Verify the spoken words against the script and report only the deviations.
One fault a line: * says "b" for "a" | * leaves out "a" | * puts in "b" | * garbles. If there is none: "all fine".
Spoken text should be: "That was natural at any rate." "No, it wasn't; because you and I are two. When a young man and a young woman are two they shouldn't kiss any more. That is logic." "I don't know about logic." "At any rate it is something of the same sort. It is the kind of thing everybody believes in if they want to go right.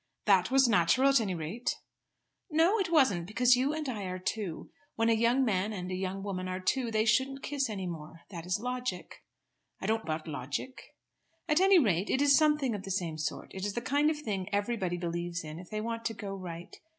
* leaves out "know"